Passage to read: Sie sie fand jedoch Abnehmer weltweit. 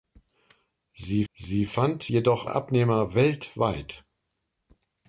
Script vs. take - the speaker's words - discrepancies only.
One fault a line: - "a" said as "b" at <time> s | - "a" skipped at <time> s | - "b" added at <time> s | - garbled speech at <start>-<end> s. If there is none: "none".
none